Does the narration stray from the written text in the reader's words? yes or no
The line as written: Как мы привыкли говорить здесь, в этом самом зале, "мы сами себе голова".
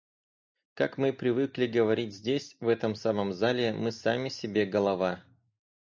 no